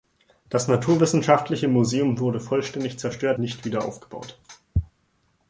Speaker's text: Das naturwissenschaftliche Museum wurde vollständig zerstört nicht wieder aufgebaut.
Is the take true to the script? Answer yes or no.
yes